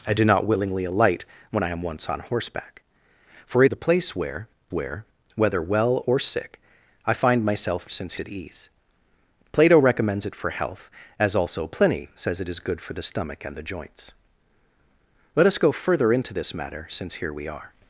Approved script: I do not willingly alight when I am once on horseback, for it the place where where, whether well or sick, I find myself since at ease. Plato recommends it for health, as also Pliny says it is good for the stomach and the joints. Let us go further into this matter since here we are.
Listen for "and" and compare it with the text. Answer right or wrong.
right